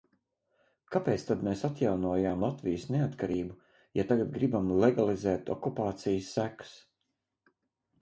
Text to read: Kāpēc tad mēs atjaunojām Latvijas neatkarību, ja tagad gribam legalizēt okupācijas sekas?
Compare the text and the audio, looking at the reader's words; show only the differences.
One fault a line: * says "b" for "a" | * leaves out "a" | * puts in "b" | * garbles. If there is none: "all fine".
all fine